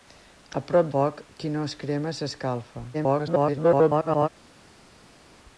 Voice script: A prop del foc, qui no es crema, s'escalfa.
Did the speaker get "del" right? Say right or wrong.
wrong